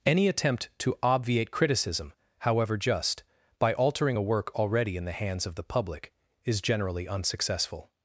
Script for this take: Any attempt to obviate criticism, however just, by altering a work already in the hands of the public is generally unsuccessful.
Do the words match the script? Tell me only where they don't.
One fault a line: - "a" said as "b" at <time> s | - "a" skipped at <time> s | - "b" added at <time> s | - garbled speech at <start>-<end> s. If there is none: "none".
none